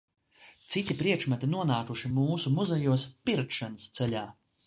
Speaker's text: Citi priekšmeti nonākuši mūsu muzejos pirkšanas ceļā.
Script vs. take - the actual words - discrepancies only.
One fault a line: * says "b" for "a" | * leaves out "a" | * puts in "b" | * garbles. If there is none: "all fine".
all fine